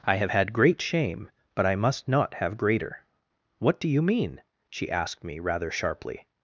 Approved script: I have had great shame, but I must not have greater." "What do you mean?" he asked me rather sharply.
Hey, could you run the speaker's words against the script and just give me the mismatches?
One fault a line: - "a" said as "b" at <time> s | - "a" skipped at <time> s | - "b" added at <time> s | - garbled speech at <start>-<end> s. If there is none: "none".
- "he" said as "she" at 4.7 s